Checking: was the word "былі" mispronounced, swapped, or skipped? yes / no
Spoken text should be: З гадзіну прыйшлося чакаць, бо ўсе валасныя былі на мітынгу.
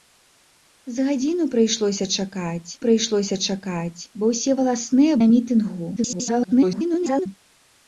yes